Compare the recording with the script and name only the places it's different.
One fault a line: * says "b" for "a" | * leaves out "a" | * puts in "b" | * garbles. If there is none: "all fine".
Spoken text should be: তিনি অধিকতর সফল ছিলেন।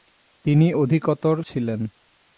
* leaves out "সফল"